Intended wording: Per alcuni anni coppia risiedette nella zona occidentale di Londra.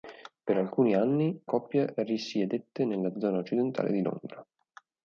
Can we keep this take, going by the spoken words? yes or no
yes